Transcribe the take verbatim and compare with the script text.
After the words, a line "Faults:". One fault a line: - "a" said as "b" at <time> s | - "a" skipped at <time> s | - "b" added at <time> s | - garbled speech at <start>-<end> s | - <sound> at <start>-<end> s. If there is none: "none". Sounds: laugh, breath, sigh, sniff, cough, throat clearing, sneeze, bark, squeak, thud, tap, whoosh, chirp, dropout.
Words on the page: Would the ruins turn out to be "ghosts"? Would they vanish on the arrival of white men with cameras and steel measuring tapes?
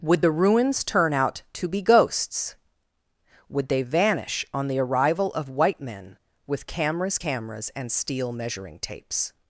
Would the ruins turn out to be "ghosts"? Would they vanish on the arrival of white men with cameras cameras and steel measuring tapes?
Faults:
- "cameras" added at 7.2 s